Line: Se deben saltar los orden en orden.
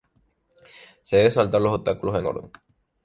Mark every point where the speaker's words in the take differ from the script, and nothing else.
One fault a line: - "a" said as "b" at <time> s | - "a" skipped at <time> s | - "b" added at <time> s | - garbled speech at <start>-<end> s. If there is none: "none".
- "orden" said as "obstáculos" at 1.7 s